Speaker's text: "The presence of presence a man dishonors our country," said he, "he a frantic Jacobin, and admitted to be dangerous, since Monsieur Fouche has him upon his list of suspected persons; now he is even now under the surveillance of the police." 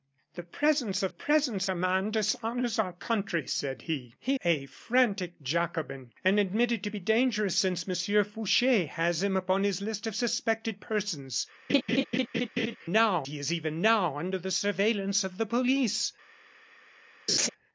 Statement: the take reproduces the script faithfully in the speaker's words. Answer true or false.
true